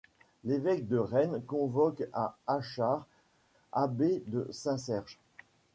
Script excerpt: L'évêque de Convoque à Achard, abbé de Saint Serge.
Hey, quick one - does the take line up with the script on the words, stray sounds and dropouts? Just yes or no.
no